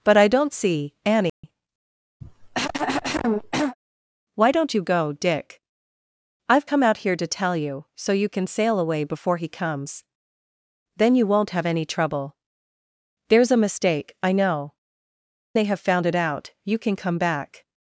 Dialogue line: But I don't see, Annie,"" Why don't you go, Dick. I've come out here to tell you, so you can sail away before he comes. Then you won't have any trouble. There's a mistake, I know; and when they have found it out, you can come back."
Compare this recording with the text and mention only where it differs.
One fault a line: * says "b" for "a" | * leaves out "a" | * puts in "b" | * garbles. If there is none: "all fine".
* leaves out "and when"